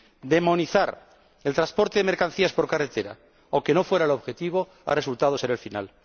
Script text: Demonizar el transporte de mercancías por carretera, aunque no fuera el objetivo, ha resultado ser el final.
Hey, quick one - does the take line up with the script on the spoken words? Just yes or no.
yes